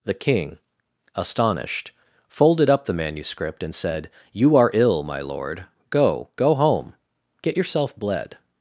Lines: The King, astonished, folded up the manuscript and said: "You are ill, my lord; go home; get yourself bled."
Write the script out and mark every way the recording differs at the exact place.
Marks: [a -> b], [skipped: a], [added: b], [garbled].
The King, astonished, folded up the manuscript and said: "You are ill, my lord; go [added: go] home; get yourself bled."